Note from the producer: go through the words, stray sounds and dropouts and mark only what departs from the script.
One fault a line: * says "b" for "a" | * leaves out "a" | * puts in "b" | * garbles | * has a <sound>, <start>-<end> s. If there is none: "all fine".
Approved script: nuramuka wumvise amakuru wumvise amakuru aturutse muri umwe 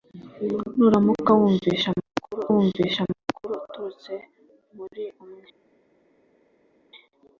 all fine